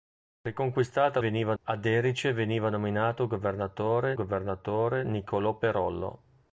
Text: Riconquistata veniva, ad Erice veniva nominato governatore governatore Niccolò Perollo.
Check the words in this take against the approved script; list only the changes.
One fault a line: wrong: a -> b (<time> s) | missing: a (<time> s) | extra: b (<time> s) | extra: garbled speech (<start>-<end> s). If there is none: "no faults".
no faults